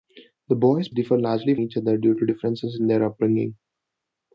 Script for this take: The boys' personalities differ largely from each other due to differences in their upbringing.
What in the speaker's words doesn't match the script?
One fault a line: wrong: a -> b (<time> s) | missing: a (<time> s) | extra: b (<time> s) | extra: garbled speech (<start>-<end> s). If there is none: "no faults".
missing: personalities (0.9 s)
missing: from (1.6 s)